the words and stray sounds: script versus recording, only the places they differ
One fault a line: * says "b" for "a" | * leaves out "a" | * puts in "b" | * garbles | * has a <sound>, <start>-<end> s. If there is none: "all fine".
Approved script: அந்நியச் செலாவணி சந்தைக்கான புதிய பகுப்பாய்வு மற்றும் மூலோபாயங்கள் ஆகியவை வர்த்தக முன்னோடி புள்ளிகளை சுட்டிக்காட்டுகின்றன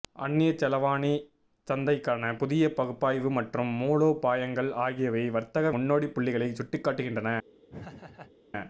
* has a laugh, 7.7-8.3 s